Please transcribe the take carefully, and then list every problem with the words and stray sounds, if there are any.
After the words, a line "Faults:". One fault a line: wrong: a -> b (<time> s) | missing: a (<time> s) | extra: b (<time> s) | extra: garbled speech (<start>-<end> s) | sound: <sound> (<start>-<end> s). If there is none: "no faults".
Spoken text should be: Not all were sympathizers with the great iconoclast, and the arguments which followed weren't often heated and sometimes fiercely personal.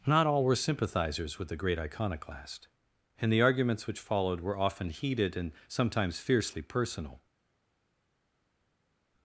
Not all were sympathizers with the great iconoclast, and the arguments which followed were often heated and sometimes fiercely personal.
Faults:
wrong: weren't -> were (4.4 s)